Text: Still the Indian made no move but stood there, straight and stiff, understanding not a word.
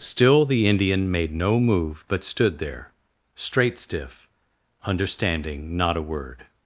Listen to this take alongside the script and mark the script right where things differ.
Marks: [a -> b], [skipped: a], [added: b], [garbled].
Still the Indian made no move but stood there, straight [skipped: and] stiff, understanding not a word.